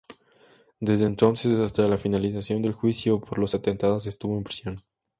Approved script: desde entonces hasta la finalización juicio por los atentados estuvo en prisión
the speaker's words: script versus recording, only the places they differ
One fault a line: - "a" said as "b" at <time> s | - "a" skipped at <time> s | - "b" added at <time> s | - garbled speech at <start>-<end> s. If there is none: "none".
- "del" added at 2.6 s